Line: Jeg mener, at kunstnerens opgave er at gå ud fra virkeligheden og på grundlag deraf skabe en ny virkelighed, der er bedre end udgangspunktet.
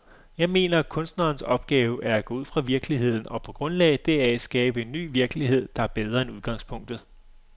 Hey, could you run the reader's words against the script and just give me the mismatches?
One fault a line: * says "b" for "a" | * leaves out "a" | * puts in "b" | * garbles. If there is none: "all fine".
all fine